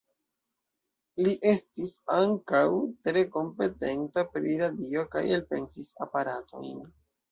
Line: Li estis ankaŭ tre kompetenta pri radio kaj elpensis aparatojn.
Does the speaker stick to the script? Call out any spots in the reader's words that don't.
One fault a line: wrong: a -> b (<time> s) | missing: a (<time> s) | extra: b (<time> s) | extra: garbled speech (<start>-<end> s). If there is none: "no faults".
no faults